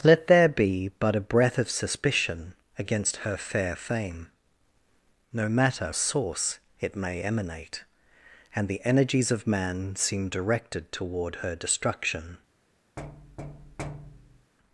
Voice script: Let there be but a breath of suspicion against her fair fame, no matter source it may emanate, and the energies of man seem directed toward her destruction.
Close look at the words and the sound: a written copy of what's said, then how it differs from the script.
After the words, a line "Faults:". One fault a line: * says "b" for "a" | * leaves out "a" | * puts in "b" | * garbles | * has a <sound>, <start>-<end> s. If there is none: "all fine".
Let there be but a breath of suspicion against her fair fame, no matter source it may emanate, and the energies of man seem directed toward her destruction.
Faults:
* has a thud, 13.0-14.5 s